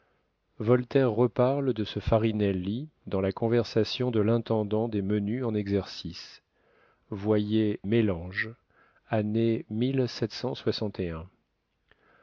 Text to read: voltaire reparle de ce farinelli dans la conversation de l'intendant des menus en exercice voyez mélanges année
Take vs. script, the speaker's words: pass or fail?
pass